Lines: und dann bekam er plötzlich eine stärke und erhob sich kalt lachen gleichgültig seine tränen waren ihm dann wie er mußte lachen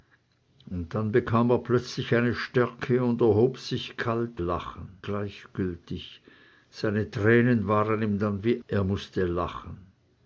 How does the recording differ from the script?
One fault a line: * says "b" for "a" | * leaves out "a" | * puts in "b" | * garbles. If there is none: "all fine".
all fine